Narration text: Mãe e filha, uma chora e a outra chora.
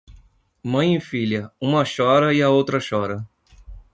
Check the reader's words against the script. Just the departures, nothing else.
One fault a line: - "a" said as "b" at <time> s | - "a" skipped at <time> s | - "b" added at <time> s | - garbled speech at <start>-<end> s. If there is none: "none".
none